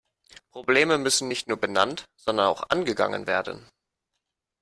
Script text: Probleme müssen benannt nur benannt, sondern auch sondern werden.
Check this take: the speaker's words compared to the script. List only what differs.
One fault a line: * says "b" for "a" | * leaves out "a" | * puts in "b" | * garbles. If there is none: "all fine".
* says "nicht" for "benannt"
* says "angegangen" for "sondern"